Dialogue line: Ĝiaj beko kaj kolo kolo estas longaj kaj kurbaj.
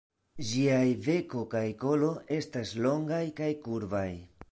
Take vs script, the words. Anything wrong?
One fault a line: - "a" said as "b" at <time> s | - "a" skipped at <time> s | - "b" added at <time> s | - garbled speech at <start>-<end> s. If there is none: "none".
- "kolo" skipped at 2.1 s